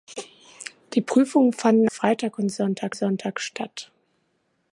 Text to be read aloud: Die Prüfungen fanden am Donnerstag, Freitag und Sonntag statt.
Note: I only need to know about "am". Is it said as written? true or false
false